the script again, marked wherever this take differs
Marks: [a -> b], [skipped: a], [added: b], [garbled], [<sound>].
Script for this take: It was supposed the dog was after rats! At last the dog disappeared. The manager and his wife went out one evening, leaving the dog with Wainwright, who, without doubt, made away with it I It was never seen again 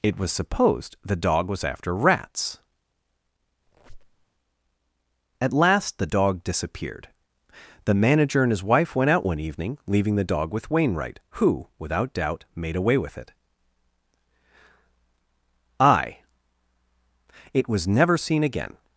It was supposed the dog was after rats! [squeak] At last the dog disappeared. The manager and his wife went out one evening, leaving the dog with Wainwright, who, without doubt, made away with it I It was never seen again